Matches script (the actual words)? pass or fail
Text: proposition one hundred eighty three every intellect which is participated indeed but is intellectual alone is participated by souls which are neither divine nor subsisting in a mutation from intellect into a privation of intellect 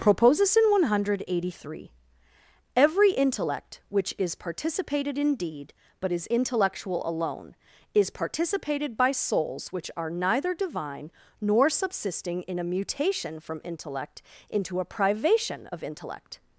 pass